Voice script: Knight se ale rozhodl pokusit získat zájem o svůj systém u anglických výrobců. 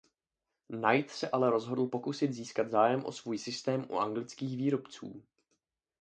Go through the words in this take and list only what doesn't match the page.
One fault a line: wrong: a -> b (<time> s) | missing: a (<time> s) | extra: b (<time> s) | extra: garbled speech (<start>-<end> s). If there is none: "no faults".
no faults